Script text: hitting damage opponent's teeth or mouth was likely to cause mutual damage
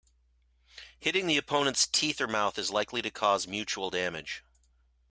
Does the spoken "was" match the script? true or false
false